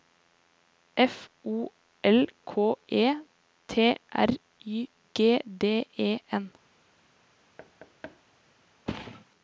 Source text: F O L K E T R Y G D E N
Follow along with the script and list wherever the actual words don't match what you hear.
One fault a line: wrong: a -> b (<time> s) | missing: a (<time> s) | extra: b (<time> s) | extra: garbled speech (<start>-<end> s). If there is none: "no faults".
no faults